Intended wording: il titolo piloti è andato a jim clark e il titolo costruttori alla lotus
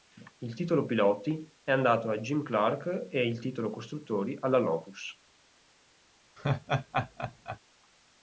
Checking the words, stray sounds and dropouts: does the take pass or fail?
fail